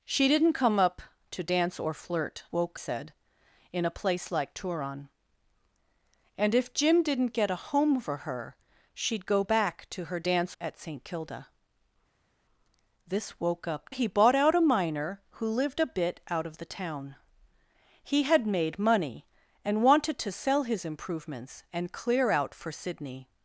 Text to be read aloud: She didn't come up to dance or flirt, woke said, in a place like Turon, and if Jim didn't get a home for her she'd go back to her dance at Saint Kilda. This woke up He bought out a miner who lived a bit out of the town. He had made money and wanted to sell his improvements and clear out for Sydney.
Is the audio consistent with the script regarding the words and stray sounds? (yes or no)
yes